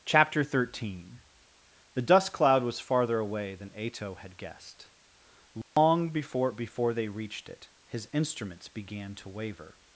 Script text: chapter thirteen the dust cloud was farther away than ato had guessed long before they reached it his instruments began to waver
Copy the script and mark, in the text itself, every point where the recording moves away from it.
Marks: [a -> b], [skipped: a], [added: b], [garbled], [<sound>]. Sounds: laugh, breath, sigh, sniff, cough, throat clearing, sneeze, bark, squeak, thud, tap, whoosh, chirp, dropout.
chapter thirteen the dust cloud was farther away than ato had guessed long [dropout] before [added: before] they reached it his instruments began to waver